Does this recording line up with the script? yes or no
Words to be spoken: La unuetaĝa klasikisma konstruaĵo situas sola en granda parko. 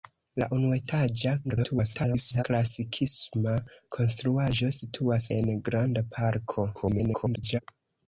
no